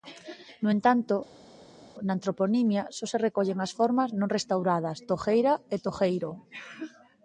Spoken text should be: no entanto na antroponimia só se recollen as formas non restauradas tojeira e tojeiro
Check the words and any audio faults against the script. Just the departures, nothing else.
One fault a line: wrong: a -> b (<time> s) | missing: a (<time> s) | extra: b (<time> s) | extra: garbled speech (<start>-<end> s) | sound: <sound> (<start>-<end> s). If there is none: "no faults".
no faults